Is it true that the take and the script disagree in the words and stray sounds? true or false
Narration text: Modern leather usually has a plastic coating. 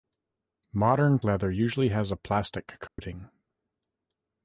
true